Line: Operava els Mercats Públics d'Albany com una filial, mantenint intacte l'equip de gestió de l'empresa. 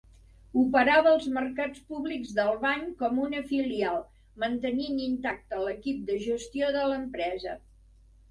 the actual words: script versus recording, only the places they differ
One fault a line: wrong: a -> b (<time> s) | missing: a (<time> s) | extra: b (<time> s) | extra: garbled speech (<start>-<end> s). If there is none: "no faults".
no faults